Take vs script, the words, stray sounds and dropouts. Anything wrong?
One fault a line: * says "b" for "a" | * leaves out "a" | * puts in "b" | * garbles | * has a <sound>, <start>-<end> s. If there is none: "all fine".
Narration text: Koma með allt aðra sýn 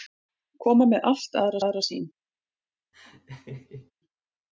* puts in "aðra"
* has a laugh, 2.9-3.9 s